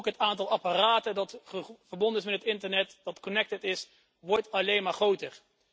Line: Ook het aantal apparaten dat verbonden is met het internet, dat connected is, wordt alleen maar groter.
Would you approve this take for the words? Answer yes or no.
yes